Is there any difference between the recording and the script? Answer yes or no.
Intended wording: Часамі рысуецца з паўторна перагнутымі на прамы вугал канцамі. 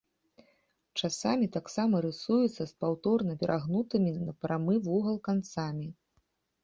yes